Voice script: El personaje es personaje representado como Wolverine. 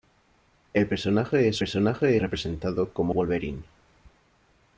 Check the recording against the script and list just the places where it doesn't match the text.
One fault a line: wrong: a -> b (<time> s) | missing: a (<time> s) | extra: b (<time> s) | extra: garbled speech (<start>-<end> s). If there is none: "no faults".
no faults